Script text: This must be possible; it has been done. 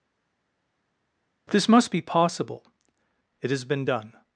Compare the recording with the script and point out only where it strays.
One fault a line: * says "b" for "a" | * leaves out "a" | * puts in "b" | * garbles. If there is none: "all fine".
all fine